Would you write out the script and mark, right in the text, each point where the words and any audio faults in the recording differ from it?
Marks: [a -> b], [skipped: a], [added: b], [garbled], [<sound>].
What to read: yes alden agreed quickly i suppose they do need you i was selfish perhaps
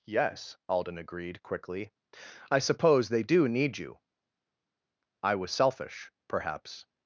yes alden agreed quickly i suppose they do need you i was selfish perhaps